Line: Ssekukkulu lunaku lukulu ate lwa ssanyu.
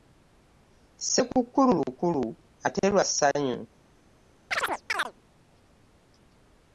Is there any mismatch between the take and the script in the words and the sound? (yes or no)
yes